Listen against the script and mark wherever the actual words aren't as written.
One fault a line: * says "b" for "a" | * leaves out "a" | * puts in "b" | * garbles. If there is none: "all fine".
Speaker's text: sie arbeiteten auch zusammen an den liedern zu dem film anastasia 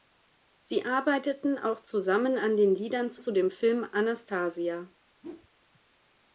* puts in "zu"